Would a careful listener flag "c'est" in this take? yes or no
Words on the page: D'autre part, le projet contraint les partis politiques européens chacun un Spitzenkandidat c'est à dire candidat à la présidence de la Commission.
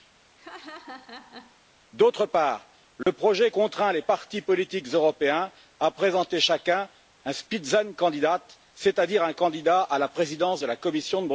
no